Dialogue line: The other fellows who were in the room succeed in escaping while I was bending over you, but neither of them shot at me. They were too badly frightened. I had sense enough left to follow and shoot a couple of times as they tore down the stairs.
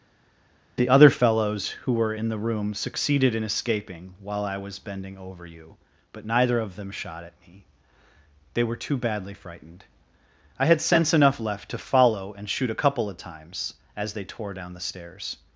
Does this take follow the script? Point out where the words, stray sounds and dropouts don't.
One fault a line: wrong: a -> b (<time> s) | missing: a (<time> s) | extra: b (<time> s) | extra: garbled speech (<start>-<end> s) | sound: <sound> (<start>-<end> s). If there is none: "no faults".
wrong: succeed -> succeeded (2.7 s)